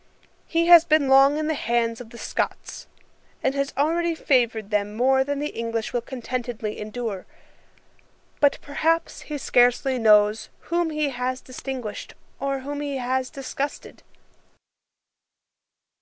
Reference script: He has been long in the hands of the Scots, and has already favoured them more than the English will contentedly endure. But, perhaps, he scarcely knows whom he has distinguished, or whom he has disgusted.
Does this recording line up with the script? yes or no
yes